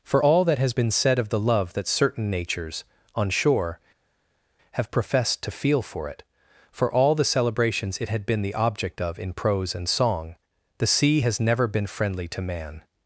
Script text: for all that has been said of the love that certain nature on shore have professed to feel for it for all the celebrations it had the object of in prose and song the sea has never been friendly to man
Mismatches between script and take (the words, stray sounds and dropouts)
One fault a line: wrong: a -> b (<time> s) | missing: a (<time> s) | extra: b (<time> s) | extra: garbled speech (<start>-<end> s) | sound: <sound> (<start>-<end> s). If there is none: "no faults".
wrong: nature -> natures (2.3 s)
extra: been (8.2 s)